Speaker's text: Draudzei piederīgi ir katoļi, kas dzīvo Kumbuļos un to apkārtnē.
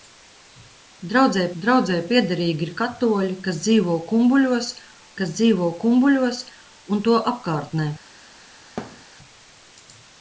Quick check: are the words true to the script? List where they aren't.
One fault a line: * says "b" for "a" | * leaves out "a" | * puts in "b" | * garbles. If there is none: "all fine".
* puts in "draudzei"
* puts in "kas dzīvo Kumbuļos"